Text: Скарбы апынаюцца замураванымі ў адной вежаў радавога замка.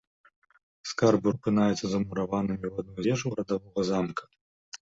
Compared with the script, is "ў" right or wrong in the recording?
right